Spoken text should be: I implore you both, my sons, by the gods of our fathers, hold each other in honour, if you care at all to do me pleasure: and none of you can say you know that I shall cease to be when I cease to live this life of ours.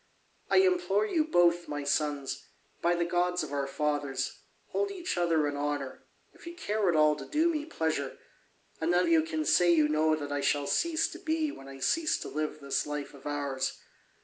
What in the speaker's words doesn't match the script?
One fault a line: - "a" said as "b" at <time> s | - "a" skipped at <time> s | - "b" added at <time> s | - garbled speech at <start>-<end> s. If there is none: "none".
- "of" skipped at 9.1 s